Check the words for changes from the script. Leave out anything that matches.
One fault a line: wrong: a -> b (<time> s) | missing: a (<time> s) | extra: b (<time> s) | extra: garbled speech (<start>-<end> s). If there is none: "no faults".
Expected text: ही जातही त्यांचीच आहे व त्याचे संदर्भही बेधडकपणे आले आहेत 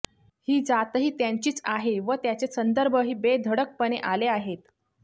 no faults